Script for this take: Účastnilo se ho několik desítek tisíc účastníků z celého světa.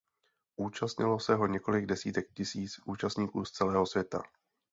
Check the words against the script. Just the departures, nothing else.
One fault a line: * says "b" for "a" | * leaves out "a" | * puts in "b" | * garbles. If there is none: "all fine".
all fine